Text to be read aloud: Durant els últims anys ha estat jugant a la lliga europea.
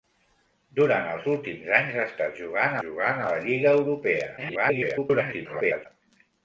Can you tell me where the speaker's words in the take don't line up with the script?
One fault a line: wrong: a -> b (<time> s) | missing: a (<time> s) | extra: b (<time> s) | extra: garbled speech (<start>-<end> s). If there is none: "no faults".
extra: jugant (2.8 s)
extra: garbled speech (4.4-5.9 s)